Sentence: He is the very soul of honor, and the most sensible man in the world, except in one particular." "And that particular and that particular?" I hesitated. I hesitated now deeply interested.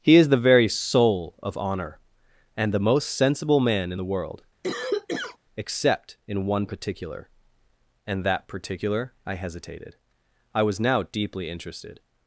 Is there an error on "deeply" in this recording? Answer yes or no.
no